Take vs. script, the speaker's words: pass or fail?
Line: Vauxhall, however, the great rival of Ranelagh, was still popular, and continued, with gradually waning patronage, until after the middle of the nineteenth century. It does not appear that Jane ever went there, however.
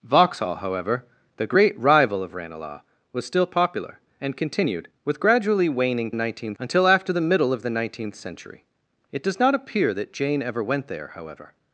fail